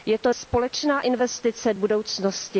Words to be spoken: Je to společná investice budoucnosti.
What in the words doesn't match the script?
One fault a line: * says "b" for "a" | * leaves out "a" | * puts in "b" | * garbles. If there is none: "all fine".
all fine